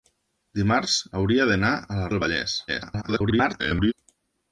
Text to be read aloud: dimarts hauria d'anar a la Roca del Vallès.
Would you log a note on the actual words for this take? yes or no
yes